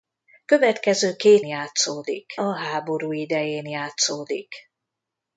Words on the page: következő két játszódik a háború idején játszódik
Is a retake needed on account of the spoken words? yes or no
no